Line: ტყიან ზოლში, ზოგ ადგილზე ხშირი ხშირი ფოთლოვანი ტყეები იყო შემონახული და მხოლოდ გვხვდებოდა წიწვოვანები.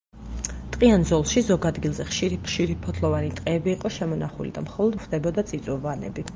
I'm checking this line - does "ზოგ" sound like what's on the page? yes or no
yes